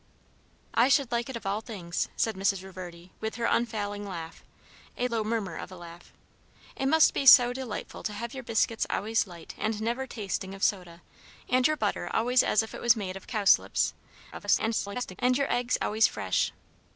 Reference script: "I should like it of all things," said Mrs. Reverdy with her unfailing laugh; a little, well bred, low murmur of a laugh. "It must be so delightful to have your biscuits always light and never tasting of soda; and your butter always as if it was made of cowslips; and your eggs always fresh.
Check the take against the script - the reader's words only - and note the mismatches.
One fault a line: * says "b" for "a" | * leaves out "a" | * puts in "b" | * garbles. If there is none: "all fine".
* leaves out "little well bred"
* garbles